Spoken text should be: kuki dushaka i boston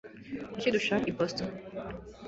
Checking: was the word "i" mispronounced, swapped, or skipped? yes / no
no